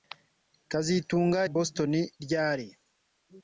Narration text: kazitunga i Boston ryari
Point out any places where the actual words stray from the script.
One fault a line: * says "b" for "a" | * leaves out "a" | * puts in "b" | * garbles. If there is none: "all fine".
all fine